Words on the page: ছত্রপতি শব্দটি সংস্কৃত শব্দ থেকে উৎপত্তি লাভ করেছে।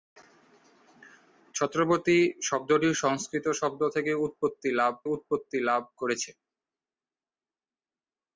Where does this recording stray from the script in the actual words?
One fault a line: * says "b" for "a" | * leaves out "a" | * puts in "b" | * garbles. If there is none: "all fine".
* puts in "উৎপত্তি লাভ"